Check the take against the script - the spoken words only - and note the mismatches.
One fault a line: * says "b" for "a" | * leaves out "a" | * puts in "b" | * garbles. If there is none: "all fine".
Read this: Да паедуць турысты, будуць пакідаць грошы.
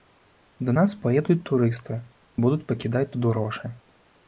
* puts in "нас"
* puts in "тут"